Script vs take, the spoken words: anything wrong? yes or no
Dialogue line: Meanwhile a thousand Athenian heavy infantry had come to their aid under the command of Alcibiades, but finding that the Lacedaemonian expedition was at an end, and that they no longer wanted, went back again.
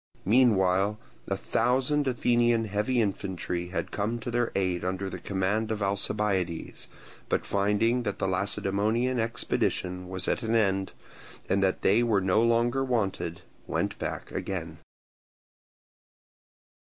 yes